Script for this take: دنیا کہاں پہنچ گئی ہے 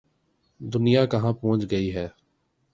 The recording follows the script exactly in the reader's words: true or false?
true